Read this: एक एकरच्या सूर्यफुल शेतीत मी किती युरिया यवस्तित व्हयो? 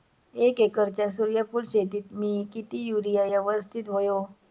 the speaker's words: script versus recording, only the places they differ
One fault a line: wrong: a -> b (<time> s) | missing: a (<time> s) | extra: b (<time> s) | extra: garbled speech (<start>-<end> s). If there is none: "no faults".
no faults